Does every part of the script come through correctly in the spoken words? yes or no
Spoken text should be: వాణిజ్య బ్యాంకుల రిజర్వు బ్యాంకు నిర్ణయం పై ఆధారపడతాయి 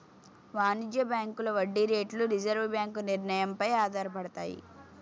no